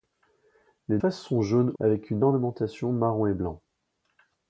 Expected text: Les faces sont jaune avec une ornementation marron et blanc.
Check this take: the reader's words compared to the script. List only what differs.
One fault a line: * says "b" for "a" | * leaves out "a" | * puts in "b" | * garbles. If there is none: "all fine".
all fine